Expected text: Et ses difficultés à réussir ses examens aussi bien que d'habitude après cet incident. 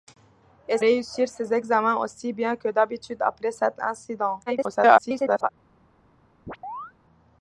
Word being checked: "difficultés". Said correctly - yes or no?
no